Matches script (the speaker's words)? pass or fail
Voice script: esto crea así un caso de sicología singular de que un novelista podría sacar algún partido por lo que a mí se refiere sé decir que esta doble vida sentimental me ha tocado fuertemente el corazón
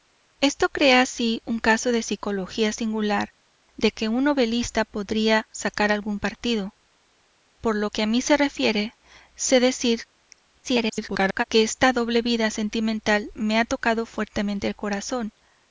fail